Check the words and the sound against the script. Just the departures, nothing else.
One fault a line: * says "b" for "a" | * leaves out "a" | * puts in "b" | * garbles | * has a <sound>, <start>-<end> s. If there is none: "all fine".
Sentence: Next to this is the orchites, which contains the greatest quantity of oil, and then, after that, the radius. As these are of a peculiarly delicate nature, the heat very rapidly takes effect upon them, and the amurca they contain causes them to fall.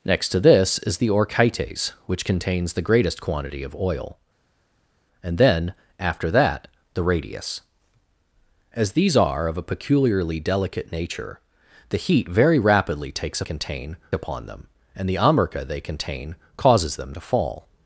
* says "contain" for "effect"